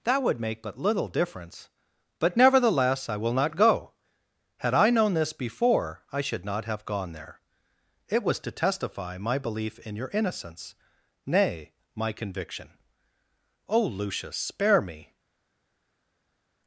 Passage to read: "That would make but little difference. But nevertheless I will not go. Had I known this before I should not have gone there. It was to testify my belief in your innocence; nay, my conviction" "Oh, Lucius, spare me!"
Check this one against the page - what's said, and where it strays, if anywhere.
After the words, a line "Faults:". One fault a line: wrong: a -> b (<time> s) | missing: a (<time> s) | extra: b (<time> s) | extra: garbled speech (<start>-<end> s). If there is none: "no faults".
"That would make but little difference. But nevertheless I will not go. Had I known this before I should not have gone there. It was to testify my belief in your innocence; nay, my conviction" "Oh, Lucius, spare me!"
Faults:
no faults